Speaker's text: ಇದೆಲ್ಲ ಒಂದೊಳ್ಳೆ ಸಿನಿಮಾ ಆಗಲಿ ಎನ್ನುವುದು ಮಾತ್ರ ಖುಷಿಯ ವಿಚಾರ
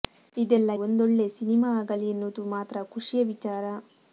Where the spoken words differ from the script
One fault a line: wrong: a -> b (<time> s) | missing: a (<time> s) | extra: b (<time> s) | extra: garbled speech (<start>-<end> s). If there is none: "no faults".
no faults